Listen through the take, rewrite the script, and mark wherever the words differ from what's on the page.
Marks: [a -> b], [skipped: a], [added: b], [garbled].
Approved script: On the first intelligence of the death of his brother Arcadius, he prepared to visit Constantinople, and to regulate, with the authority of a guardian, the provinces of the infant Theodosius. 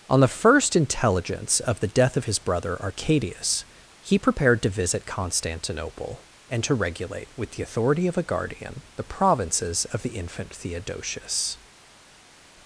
On the first intelligence of the death of his brother Arcadius, he prepared to visit Constantinople, and to regulate, with the authority of a guardian, the provinces of the infant Theodosius.